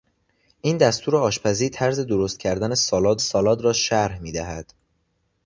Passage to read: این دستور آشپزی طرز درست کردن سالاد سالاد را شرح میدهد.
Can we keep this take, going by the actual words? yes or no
yes